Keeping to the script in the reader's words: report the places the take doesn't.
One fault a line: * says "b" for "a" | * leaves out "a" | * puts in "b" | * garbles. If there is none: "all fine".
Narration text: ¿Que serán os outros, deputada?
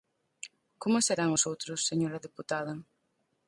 * says "Como" for "Que"
* puts in "señora"